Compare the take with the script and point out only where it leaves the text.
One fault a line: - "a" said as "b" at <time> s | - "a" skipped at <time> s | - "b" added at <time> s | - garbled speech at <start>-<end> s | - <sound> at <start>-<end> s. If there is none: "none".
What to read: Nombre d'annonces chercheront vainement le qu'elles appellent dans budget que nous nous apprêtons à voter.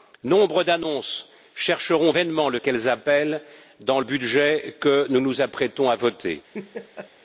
- laugh at 6.5-7.1 s